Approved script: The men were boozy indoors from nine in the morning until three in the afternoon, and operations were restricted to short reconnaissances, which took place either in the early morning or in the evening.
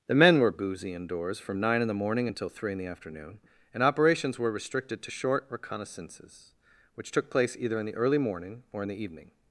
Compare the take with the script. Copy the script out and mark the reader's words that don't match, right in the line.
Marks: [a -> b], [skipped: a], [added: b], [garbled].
The men were boozy indoors from nine in the morning until three in the afternoon, and operations were restricted to short reconnaissances, which took place either in the early morning or in the evening.